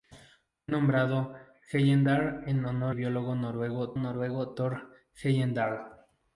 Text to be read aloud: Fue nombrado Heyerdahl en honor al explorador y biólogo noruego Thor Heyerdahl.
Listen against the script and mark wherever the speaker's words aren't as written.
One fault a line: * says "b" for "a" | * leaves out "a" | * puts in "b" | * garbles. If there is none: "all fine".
* leaves out "al explorador"
* puts in "noruego"